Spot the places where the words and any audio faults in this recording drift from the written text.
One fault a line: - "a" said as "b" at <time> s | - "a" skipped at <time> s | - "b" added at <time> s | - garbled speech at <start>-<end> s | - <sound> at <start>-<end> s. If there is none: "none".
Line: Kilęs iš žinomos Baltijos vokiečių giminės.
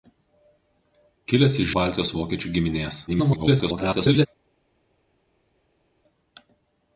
- "žinomos" skipped at 1.7 s
- garbled speech at 3.1-4.3 s